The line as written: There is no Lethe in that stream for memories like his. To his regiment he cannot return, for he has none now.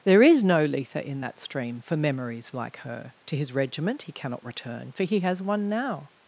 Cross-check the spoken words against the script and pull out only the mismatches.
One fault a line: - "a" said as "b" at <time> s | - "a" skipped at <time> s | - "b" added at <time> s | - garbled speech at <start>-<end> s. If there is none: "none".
- "his" said as "her" at 2.8 s
- "none" said as "one" at 5.4 s